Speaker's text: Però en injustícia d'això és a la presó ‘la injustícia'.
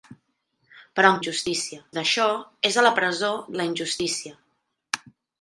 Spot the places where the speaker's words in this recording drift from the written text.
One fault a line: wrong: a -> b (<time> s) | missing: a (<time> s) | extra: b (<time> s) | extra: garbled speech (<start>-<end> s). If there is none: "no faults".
no faults